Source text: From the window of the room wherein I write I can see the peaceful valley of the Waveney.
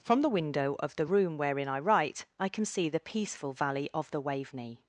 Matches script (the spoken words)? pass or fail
pass